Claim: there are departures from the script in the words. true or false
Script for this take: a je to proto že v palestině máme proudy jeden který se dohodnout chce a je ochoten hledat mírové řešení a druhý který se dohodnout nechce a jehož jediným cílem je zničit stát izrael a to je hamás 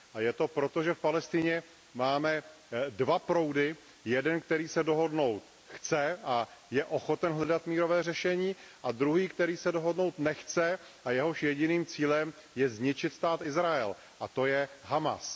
true